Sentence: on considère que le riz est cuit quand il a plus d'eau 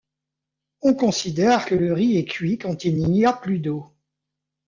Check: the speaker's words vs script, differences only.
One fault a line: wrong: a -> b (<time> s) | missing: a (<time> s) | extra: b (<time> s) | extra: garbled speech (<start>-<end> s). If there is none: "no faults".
extra: n'y (3.0 s)